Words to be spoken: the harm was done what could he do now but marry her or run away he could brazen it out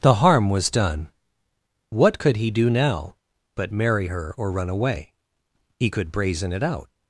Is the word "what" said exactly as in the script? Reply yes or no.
yes